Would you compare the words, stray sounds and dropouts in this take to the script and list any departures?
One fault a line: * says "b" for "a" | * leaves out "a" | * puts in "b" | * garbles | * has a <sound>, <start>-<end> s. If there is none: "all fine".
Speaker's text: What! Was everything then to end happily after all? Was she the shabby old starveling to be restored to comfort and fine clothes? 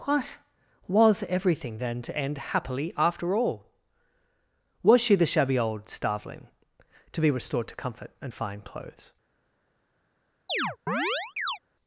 * has a chirp, 10.5-11.6 s